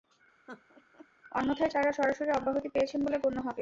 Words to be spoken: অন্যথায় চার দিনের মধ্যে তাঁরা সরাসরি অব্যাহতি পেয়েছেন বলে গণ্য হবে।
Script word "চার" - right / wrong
wrong